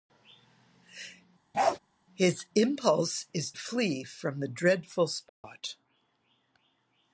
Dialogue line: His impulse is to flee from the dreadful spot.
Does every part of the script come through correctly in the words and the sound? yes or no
no